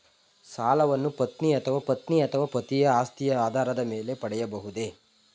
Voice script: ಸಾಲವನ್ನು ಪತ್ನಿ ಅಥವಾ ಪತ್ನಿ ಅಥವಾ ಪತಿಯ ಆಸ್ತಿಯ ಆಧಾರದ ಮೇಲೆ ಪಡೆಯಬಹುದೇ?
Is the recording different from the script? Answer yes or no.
no